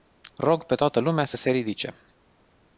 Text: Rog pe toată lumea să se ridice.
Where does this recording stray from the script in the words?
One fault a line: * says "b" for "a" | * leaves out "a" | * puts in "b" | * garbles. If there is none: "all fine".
all fine